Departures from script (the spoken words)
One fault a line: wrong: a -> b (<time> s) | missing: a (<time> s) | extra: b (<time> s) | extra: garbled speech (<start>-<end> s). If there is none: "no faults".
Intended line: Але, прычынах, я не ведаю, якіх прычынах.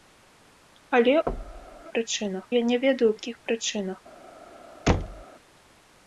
no faults